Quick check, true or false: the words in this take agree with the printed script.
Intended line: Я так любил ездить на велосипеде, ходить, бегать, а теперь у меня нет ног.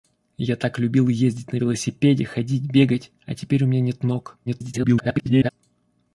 false